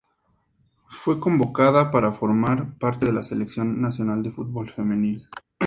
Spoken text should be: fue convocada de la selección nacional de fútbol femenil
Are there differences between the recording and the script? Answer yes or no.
yes